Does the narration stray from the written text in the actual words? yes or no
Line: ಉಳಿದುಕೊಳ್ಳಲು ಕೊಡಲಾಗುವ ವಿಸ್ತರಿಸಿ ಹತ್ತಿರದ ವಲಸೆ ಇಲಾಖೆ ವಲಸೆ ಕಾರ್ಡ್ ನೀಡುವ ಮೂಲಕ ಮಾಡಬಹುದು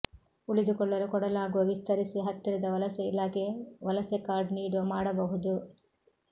yes